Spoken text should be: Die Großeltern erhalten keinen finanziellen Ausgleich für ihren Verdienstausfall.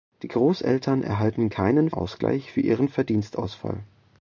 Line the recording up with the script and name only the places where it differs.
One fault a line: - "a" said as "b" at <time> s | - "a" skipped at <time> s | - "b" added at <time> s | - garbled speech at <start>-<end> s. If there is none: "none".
- "finanziellen" skipped at 1.9 s